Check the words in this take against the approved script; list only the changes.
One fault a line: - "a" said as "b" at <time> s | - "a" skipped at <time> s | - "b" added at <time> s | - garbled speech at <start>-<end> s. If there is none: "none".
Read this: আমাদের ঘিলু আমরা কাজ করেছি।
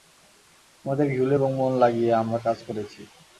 - "এবং মন লাগিয়ে" added at 1.3 s